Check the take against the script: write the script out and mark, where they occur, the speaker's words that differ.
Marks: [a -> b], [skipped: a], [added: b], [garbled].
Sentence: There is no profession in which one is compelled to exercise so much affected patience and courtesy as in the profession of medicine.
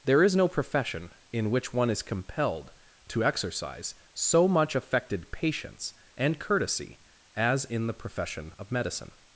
There is no profession in which one is compelled to exercise so much affected patience and courtesy as in the profession of medicine.